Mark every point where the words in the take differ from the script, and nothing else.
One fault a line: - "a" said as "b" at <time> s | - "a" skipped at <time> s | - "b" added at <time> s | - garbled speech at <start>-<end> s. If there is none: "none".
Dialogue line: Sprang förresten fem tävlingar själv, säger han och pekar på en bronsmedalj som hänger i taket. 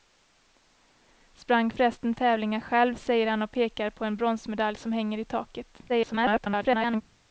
- "fem" skipped at 2.1 s
- garbled speech at 5.9-7.0 s